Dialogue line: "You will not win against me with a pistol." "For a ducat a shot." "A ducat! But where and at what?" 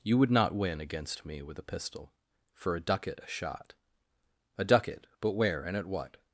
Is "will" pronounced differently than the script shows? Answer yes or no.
yes